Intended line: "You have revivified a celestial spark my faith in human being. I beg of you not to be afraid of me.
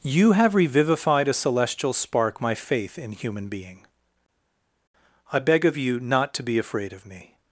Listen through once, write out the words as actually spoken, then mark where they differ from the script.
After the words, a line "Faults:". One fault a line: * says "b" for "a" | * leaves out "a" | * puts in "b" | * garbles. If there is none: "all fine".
"You have revivified a celestial spark my faith in human being. I beg of you not to be afraid of me.
Faults:
all fine